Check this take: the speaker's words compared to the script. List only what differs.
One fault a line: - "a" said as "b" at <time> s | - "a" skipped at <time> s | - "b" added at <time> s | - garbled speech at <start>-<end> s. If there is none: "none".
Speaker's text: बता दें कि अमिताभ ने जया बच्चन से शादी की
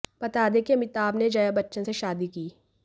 none